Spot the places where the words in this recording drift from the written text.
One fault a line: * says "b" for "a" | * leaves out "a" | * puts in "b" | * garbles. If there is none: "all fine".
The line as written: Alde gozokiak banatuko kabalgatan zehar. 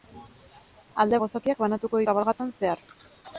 all fine